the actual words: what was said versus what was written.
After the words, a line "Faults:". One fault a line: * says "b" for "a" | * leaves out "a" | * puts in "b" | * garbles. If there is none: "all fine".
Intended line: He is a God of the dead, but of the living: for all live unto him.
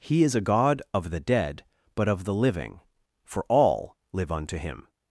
He is a God of the dead, but of the living: for all live unto him.
Faults:
all fine